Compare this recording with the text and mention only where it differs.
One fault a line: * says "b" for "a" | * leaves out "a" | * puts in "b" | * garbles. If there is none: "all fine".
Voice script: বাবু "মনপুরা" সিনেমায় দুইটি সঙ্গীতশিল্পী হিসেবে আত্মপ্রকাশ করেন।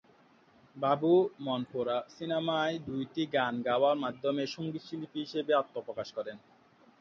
* puts in "গান গাওয়ার মাধ্যমে"